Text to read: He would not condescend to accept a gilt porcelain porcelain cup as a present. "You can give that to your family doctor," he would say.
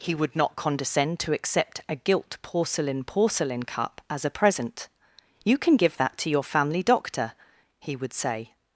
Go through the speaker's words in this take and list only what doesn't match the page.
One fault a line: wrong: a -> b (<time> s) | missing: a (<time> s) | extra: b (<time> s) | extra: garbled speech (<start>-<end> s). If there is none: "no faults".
no faults